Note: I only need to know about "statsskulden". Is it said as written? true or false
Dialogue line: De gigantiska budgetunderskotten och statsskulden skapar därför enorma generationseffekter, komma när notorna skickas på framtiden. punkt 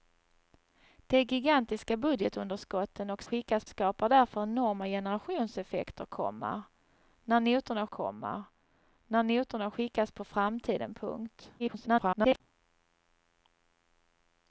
false